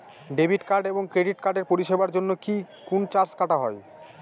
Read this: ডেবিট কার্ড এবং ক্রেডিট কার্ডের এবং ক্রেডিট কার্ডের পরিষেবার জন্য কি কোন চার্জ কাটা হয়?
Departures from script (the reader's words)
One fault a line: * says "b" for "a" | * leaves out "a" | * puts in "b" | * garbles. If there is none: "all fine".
* leaves out "এবং ক্রেডিট কার্ডের"